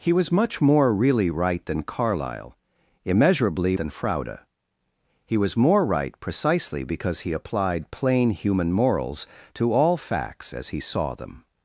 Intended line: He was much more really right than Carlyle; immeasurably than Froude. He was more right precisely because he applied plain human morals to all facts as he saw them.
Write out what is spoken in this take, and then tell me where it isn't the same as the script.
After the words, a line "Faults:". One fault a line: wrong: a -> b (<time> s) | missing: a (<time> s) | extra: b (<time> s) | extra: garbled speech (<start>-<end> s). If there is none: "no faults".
He was much more really right than Carlyle; immeasurably than Froude. He was more right precisely because he applied plain human morals to all facts as he saw them.
Faults:
no faults